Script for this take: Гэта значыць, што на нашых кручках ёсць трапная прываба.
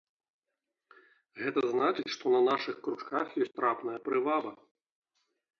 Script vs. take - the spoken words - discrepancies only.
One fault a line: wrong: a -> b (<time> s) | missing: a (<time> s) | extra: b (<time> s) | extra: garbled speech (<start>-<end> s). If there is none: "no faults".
no faults